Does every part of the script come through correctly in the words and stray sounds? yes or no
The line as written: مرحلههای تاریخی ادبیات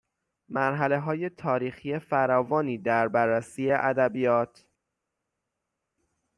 no